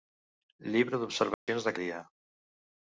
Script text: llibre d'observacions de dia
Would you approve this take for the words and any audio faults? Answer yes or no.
no